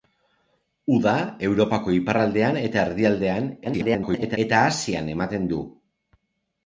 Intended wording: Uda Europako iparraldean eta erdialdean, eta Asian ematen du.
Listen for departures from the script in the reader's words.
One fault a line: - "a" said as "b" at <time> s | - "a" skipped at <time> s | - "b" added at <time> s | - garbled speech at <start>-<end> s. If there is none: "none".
- garbled speech at 3.6-4.4 s